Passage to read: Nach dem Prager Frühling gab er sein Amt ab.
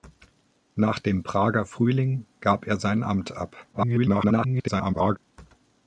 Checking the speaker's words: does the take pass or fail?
fail